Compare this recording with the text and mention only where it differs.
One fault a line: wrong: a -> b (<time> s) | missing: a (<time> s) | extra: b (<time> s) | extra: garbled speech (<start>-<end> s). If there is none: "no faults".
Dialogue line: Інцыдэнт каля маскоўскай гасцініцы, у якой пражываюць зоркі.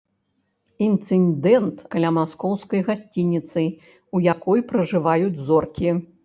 no faults